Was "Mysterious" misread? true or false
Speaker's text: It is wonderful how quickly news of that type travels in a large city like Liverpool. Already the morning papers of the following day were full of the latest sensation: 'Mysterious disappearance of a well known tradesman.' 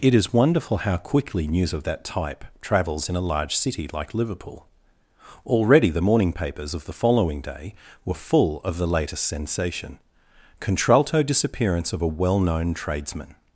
true